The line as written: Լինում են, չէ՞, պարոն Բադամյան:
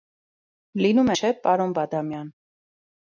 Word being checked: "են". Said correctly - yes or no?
no